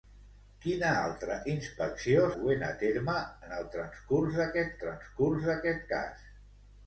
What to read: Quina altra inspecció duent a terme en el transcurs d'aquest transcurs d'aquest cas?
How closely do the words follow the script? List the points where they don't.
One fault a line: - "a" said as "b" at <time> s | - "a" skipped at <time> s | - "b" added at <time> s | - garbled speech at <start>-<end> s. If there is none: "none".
none